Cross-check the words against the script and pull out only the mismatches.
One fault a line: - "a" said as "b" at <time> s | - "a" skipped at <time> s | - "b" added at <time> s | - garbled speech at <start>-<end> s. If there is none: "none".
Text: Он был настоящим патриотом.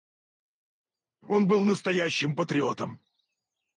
none